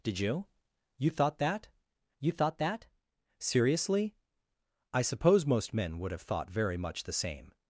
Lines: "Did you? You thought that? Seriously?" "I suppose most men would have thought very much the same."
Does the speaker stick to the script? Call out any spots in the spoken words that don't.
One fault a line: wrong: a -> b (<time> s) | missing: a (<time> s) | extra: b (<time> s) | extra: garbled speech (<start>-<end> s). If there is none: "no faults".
extra: you thought that (2.2 s)